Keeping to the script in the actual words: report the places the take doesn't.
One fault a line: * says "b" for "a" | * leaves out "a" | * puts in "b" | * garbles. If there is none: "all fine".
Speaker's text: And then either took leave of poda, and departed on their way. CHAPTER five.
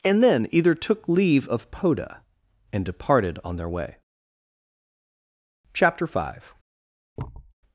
all fine